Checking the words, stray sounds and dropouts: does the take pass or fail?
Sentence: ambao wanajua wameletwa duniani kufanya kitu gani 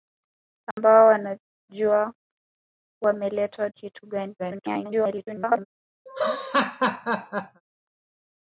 fail